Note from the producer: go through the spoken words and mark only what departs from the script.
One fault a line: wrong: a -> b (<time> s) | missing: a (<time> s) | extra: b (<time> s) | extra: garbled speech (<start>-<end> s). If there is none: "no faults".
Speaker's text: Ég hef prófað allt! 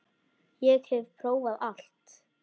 no faults